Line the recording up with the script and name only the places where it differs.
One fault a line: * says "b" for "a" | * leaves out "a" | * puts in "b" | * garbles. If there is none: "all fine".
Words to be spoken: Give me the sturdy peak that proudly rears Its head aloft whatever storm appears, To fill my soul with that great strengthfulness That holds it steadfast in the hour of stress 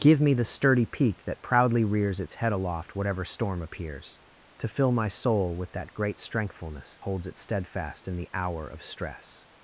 * leaves out "That"